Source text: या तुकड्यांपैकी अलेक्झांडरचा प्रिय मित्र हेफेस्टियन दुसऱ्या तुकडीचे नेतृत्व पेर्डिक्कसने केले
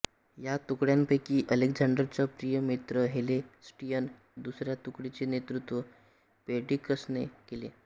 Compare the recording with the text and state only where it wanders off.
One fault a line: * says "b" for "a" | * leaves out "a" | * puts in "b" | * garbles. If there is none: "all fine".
all fine